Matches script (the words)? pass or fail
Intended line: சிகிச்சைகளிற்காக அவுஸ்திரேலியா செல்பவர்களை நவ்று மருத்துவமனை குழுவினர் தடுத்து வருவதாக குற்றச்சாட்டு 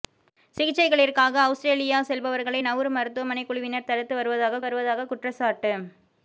fail